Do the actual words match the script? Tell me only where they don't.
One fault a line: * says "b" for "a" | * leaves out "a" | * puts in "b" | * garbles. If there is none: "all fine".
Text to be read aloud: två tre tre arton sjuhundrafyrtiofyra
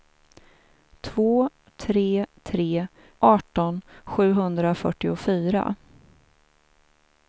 all fine